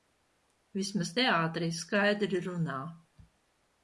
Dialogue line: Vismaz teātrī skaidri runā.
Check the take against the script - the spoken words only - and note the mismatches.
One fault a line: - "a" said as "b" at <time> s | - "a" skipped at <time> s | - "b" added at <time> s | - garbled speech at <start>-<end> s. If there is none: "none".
none